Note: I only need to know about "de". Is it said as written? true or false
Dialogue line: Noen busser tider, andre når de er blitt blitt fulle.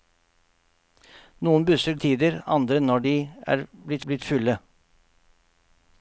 true